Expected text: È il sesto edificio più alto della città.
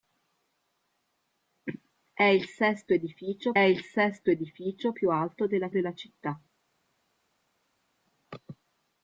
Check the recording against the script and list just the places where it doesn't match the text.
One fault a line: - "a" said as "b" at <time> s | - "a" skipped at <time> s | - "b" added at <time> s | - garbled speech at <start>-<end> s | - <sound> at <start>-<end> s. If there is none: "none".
- "il sesto edificio" added at 3.6 s
- "della" added at 5.7 s